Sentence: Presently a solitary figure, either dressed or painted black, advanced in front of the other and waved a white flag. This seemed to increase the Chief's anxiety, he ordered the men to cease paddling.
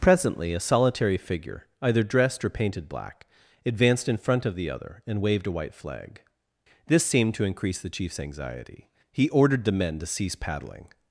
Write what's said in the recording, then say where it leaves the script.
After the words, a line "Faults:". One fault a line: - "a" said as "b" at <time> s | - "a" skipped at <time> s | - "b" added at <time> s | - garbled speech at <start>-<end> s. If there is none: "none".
Presently a solitary figure, either dressed or painted black, advanced in front of the other and waved a white flag. This seemed to increase the Chief's anxiety, he ordered the men to cease paddling.
Faults:
none